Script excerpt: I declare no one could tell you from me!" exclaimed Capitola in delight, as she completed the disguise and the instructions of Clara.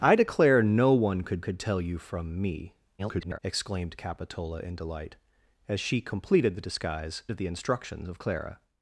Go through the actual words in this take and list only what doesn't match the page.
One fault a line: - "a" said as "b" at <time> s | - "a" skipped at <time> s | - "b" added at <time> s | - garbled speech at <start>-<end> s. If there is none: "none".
- "could" added at 1.4 s
- garbled speech at 3.0-3.4 s
- "and" skipped at 7.2 s